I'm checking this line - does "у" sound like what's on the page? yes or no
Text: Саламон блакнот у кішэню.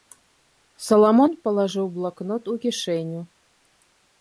yes